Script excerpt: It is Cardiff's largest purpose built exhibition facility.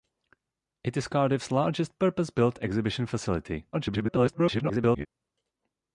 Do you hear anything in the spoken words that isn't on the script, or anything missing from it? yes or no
yes